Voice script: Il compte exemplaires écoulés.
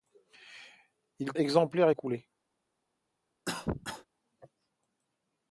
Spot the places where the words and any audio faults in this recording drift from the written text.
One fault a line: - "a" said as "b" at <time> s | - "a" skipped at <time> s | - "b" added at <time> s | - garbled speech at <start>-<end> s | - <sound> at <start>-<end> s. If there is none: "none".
- "compte" skipped at 1.3 s
- cough at 3.5-4.1 s